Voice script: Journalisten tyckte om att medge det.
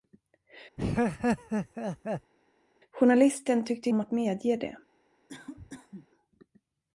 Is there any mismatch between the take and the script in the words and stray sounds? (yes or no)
yes